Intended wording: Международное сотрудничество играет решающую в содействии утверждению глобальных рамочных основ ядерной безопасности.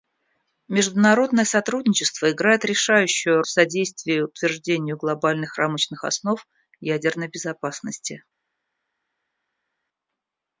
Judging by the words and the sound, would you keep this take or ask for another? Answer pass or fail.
pass